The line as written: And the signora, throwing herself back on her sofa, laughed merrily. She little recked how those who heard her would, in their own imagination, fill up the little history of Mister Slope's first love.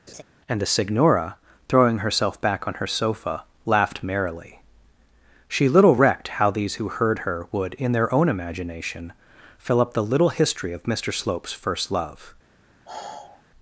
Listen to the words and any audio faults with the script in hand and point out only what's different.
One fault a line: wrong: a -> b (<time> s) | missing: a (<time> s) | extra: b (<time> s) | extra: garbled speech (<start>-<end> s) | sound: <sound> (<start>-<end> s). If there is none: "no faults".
sound: laugh (0.1-0.2 s)
wrong: those -> these (6.5 s)
sound: sigh (12.9-13.4 s)